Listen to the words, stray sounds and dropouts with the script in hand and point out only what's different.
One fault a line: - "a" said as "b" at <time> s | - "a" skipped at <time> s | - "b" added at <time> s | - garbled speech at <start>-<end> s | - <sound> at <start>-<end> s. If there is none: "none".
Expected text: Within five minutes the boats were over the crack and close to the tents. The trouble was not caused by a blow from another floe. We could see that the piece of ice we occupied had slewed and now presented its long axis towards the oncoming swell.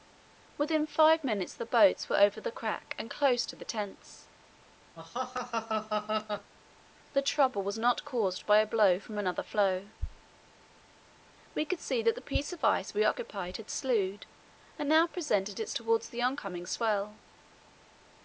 - laugh at 5.0-6.5 s
- "long axis" skipped at 15.8 s